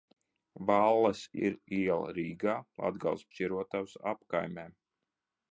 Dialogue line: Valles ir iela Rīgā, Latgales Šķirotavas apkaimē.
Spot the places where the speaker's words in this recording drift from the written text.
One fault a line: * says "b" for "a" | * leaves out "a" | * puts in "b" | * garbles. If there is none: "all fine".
all fine